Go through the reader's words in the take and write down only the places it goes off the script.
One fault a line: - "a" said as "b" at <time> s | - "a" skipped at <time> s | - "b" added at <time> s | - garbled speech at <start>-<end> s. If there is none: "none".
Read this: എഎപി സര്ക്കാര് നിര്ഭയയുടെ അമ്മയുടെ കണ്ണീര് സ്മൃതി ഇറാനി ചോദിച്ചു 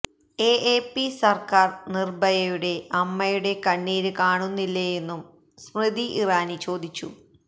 - "കാണുന്നില്ലേയെന്നും" added at 4.2 s